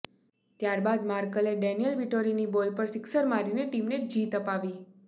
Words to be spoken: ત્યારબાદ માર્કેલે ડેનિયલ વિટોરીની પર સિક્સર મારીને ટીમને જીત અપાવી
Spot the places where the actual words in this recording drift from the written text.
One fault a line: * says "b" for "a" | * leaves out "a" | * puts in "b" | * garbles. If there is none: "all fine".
* puts in "બોલ"